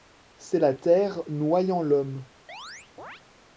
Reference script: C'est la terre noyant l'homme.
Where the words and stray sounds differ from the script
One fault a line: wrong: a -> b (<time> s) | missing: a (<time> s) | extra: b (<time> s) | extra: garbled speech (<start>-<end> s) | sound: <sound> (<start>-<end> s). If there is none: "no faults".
sound: chirp (2.5-3.2 s)